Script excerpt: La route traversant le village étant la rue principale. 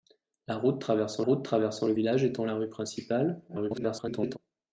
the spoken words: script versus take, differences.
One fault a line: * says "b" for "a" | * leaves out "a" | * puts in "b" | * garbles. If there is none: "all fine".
* puts in "route traversant"
* garbles